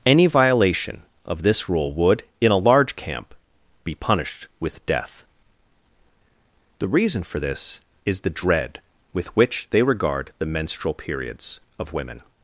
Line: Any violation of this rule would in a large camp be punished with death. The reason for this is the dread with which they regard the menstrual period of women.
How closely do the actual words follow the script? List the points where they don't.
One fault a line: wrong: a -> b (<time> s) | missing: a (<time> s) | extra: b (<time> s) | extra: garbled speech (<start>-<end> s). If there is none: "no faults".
wrong: period -> periods (10.9 s)